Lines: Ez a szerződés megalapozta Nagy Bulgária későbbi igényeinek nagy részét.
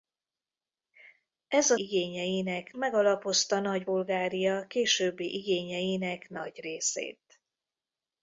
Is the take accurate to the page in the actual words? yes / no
no